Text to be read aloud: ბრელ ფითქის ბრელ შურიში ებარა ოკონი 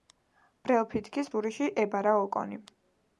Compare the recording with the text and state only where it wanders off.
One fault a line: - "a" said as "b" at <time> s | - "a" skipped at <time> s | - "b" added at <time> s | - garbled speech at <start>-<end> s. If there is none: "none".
- "ბრელ" skipped at 1.3 s